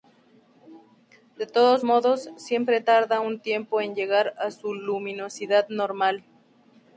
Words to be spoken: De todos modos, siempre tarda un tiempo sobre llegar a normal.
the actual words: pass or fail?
fail